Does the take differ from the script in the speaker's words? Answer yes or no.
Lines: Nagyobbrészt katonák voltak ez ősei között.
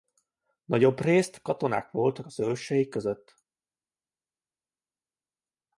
yes